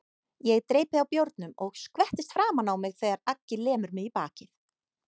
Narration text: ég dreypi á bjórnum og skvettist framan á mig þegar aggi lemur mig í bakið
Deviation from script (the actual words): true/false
false